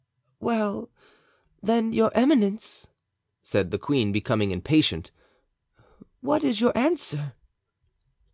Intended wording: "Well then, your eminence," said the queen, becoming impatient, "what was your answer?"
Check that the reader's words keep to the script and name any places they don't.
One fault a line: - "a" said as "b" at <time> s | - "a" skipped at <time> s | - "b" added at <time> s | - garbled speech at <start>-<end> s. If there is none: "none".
- "was" said as "is" at 6.4 s